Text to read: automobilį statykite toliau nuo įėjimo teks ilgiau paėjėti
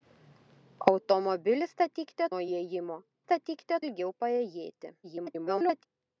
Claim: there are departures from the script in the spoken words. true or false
true